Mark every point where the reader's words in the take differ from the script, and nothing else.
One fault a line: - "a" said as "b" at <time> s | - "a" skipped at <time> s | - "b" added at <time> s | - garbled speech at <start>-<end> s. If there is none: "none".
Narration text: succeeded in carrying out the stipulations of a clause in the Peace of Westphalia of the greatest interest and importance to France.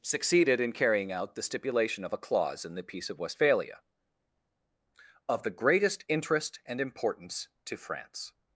- "stipulations" said as "stipulation" at 1.4 s